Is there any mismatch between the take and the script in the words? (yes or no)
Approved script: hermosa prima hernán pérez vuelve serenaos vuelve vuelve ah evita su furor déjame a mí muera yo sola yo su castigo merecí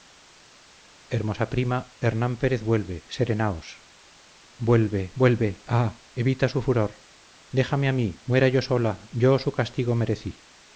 no